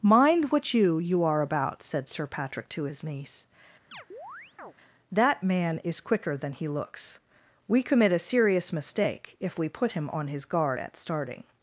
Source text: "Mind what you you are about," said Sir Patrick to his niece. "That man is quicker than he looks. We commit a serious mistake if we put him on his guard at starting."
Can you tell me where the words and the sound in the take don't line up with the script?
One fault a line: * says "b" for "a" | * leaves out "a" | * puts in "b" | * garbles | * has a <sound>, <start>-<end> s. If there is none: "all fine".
* has a chirp, 3.9-4.7 s